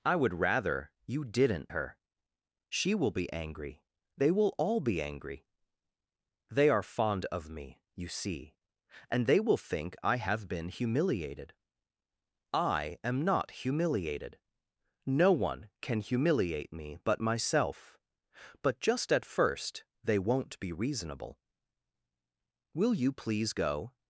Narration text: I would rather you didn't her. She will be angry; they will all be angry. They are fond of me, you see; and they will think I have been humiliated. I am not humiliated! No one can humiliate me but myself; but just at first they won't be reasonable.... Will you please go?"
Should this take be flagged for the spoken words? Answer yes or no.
no